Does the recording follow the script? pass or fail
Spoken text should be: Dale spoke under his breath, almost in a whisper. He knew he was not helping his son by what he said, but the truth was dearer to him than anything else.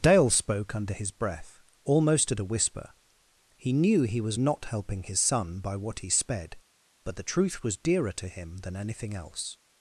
fail